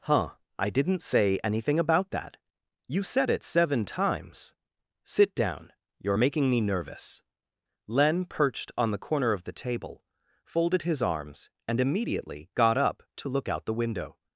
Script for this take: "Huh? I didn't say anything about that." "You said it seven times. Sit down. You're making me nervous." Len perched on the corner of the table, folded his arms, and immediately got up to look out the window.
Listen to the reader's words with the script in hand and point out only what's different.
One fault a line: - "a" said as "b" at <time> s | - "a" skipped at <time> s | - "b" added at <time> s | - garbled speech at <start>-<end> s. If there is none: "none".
none